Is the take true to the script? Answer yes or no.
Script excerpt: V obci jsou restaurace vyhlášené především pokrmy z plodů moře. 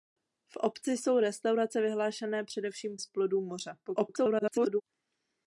no